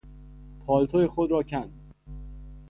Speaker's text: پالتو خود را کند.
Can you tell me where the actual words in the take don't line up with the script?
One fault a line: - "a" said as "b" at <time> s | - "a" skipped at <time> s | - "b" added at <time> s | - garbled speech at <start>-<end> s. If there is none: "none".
none